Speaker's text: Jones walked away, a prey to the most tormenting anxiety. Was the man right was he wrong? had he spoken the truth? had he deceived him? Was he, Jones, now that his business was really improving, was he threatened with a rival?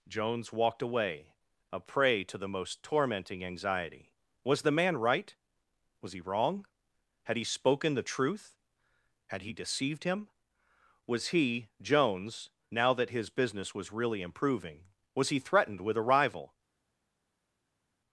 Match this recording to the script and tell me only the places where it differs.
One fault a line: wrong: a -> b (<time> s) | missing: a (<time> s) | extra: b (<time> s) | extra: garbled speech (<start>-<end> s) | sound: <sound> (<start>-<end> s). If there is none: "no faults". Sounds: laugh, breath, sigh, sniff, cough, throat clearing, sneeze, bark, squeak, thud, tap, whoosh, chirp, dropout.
no faults